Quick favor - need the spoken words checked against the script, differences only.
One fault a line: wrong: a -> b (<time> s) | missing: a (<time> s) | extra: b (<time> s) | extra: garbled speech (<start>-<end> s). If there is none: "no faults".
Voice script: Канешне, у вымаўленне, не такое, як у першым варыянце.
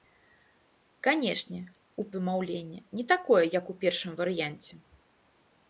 no faults